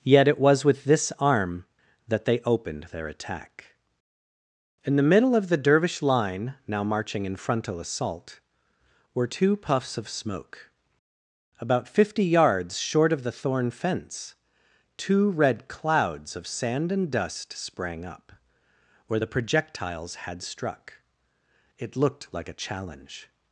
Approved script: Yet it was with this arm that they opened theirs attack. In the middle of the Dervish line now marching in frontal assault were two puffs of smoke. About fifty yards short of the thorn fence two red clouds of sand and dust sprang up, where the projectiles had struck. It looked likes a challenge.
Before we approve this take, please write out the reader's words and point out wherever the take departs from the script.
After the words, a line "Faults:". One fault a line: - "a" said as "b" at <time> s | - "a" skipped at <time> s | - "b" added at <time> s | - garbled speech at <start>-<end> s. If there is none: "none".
Yet it was with this arm that they opened their attack. In the middle of the Dervish line now marching in frontal assault were two puffs of smoke. About fifty yards short of the thorn fence two red clouds of sand and dust sprang up, where the projectiles had struck. It looked like a challenge.
Faults:
- "theirs" said as "their" at 2.9 s
- "likes" said as "like" at 22.3 s